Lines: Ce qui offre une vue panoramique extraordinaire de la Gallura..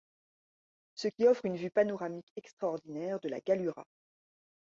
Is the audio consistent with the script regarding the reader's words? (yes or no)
yes